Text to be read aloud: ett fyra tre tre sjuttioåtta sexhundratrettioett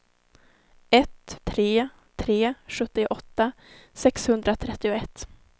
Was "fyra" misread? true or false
true